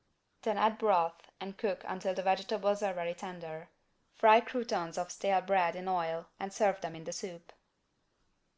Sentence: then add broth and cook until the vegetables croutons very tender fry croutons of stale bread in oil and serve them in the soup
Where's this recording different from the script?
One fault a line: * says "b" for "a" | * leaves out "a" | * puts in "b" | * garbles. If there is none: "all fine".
* says "are" for "croutons"